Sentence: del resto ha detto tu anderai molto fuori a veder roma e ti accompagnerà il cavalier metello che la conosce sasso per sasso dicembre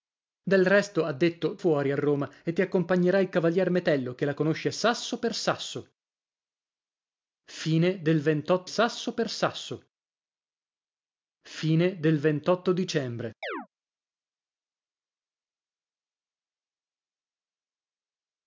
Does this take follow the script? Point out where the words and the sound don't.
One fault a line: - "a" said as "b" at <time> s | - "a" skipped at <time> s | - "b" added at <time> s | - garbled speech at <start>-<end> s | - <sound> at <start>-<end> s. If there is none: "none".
- "tu anderai molto" skipped at 1.6 s
- "veder" skipped at 2.0 s
- "sasso per sasso" added at 8.6 s
- chirp at 13.4-13.7 s